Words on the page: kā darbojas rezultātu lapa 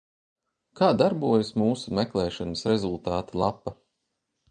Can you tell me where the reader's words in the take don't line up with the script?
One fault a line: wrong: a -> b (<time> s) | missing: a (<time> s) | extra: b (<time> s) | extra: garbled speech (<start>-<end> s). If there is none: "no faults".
extra: mūsu meklēšanas (1.6 s)